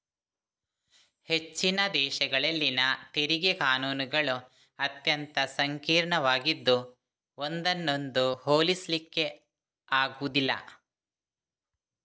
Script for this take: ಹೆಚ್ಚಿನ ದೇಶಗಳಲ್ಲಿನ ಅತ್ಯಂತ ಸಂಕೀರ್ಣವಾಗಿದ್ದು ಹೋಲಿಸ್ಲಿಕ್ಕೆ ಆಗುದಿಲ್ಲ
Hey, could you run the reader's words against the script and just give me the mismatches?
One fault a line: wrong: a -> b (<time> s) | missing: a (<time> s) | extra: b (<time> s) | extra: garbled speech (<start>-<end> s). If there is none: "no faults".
extra: ತೆರಿಗೆ ಕಾನೂನುಗಳು (3.1 s)
extra: ಒಂದನ್ನೊಂದು (7.4 s)